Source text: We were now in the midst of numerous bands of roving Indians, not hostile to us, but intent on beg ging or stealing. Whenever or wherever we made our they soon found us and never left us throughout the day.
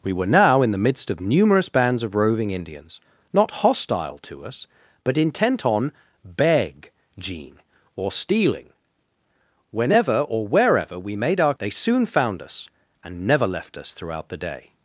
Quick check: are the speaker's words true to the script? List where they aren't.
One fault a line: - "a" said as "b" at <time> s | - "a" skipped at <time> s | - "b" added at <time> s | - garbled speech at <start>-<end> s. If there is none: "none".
none